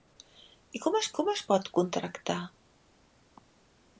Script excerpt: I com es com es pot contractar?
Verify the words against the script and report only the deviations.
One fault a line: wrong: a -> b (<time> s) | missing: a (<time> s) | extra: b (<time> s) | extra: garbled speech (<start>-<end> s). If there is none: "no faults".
no faults